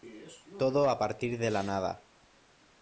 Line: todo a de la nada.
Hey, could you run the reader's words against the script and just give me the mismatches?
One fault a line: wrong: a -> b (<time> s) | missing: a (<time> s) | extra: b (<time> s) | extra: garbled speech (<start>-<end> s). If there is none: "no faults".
extra: partir (1.0 s)